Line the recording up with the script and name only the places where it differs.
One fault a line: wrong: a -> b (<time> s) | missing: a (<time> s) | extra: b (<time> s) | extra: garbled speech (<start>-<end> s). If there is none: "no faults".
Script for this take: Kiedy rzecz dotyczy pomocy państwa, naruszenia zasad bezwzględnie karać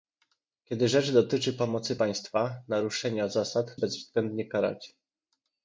no faults